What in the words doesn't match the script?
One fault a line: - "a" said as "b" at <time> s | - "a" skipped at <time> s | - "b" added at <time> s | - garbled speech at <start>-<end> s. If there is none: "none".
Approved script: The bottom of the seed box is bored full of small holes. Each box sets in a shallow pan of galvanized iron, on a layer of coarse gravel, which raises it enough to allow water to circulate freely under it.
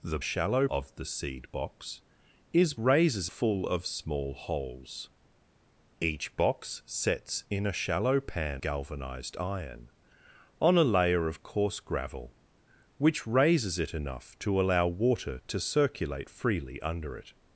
- "bottom" said as "shallow" at 0.2 s
- "bored" said as "raises" at 2.8 s
- "of" skipped at 8.6 s